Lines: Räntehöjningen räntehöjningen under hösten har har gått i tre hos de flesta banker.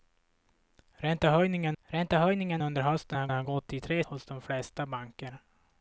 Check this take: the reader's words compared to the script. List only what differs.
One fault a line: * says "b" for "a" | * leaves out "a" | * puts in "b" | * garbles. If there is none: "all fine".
all fine